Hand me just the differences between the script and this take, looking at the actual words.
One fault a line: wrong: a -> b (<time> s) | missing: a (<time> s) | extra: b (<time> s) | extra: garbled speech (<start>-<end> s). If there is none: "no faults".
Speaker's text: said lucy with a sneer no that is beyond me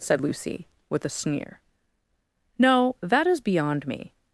no faults